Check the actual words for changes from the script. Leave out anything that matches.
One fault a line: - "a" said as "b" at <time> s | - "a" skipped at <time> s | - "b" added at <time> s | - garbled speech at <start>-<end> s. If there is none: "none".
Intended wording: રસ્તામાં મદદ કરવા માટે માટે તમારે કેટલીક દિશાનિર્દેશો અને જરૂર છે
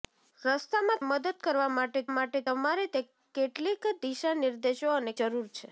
none